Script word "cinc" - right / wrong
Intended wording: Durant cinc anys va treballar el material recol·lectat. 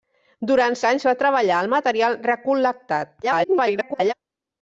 wrong